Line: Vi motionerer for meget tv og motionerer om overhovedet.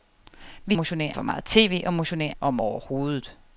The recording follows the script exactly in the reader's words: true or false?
true